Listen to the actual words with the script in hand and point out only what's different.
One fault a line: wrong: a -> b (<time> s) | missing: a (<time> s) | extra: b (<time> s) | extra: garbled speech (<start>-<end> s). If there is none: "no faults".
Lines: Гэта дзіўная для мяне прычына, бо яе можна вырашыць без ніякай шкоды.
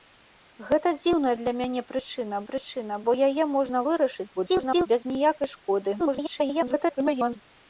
extra: прычына (2.5 s)
extra: garbled speech (4.4-4.9 s)
extra: garbled speech (6.0-7.4 s)